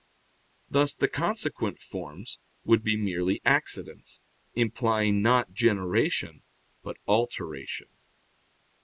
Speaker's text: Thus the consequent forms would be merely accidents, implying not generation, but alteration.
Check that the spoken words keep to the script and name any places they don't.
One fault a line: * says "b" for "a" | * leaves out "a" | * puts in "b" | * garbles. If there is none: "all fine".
all fine